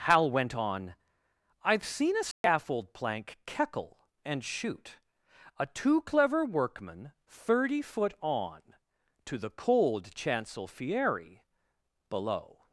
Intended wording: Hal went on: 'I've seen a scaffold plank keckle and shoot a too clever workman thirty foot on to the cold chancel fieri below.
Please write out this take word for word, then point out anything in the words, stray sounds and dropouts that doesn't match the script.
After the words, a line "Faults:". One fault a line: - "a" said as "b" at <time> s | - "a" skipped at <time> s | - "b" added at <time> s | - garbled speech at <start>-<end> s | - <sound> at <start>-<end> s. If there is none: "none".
Hal went on: 'I've seen a scaffold plank keckle and shoot a too clever workman thirty foot on to the cold chancel fieri below.
Faults:
- dropout at 2.3-2.4 s